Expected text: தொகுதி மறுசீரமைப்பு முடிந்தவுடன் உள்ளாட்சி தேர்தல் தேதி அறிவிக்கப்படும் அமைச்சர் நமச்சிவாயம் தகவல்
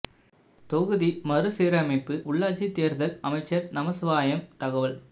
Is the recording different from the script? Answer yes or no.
yes